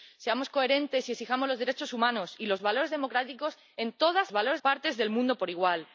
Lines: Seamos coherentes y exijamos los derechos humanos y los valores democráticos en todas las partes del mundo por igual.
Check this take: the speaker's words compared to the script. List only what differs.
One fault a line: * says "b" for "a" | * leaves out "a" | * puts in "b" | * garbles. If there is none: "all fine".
* says "valores" for "las"